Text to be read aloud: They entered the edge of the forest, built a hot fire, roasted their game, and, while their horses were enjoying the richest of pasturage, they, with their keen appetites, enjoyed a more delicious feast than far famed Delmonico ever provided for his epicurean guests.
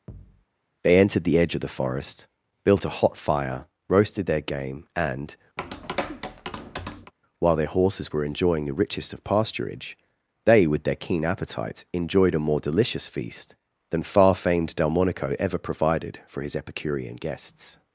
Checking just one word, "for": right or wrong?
right